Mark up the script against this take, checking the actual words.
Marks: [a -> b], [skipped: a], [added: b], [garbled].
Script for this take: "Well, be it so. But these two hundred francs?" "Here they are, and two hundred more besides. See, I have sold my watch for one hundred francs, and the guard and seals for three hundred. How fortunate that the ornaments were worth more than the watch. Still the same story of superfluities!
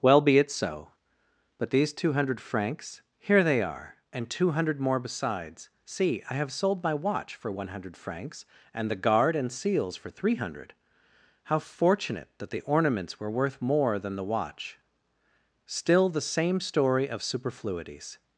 "Well, be it so. But these two hundred francs?" "Here they are, and two hundred more besides. See, I have sold my watch for one hundred francs, and the guard and seals for three hundred. How fortunate that the ornaments were worth more than the watch. Still the same story of superfluities!